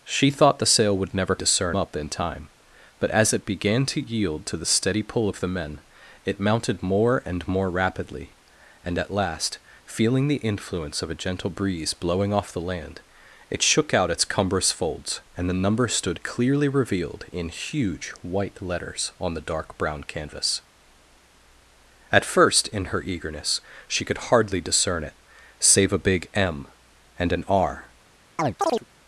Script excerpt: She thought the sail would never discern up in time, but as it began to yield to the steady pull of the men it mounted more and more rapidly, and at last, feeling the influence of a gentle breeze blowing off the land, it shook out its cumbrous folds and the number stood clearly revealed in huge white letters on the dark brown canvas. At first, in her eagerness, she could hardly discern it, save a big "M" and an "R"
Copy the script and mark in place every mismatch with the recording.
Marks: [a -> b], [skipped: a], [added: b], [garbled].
She thought the sail would never discern up in time, but as it began to yield to the steady pull of the men it mounted more and more rapidly, and at last, feeling the influence of a gentle breeze blowing off the land, it shook out its cumbrous folds and the number stood clearly revealed in huge white letters on the dark brown canvas. At first, in her eagerness, she could hardly discern it, save a big "M" and an "R"